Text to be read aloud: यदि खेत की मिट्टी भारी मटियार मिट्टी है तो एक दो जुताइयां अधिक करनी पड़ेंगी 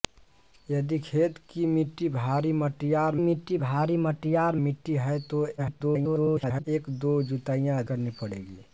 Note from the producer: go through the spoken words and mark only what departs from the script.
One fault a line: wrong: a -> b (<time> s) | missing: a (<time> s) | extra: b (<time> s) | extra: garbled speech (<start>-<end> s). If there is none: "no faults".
extra: भारी मटियार मिट्टी (3.6 s)
extra: garbled speech (5.6-6.6 s)
missing: अधिक (7.8 s)